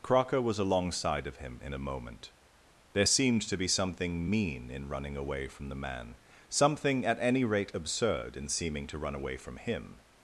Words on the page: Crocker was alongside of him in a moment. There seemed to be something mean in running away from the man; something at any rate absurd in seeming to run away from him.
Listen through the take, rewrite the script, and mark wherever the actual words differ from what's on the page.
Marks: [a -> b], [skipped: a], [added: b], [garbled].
Crocker was alongside of him in a moment. There seemed to be something mean in running away from the man; something at any rate absurd in seeming to run away from him.